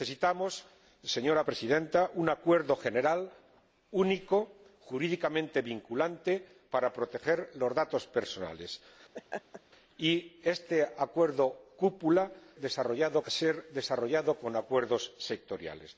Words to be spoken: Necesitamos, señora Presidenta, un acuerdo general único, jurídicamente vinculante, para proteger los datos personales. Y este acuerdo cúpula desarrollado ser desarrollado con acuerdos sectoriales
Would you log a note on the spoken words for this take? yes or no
no